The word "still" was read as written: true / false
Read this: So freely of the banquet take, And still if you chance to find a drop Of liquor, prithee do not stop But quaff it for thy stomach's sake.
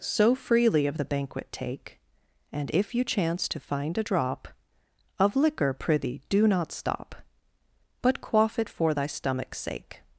false